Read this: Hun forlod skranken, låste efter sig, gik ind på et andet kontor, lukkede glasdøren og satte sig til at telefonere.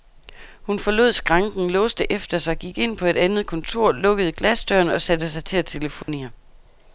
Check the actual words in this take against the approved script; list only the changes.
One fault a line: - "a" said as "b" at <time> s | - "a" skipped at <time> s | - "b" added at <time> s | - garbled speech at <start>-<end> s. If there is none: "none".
none